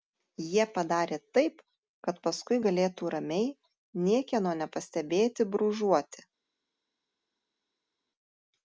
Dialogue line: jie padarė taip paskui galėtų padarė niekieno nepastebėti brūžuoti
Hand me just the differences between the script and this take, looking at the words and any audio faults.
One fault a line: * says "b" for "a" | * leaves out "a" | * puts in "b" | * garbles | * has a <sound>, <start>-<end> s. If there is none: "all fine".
* puts in "kad"
* says "ramiai" for "padarė"